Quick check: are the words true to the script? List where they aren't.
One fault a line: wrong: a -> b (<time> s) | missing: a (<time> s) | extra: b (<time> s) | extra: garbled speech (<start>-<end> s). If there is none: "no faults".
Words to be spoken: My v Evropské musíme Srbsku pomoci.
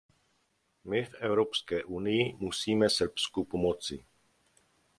extra: unii (1.8 s)